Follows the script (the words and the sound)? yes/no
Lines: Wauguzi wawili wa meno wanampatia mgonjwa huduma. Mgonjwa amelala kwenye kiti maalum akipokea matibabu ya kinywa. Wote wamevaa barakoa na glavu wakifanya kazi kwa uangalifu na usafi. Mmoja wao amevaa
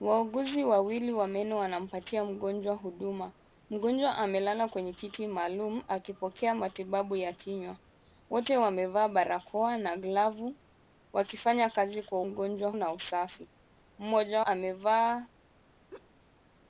no